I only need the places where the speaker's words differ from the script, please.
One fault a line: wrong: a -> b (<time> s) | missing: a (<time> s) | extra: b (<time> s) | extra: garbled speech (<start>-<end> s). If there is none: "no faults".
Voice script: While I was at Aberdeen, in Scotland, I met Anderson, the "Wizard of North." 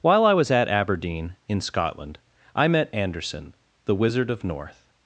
no faults